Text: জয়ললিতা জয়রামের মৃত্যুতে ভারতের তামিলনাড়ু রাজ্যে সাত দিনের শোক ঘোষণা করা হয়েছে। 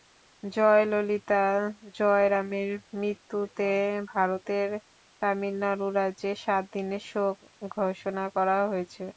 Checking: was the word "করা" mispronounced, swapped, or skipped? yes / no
no